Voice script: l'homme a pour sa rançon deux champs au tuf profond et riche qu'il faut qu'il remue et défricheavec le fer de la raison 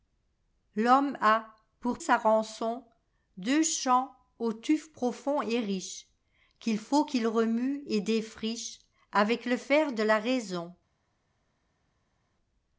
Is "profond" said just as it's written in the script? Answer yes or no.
yes